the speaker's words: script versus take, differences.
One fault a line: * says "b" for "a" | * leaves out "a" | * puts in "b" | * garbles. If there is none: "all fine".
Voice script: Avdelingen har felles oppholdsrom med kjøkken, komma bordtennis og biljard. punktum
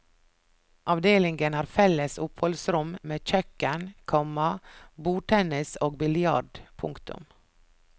all fine